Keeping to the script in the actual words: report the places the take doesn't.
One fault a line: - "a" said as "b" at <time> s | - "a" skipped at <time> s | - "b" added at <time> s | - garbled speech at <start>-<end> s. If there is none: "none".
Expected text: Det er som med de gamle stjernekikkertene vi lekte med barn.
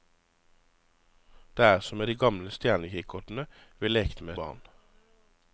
none